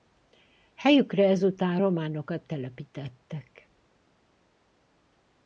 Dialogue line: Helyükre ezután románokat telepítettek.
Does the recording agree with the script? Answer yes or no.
yes